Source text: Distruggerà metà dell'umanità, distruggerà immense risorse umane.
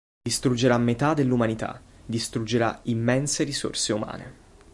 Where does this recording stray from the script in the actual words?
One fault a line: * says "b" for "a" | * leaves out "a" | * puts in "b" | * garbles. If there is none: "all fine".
all fine